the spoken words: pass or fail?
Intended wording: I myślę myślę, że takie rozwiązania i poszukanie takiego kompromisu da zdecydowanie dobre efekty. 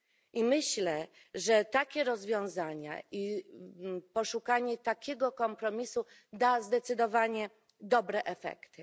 fail